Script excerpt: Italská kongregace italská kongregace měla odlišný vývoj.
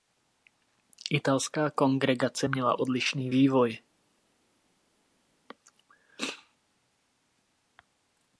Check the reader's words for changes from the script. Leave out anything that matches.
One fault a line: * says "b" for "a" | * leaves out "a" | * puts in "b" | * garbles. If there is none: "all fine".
* leaves out "italská kongregace"